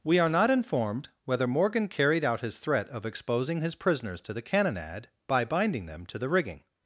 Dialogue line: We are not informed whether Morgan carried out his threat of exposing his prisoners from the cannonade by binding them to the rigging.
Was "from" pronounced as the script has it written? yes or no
no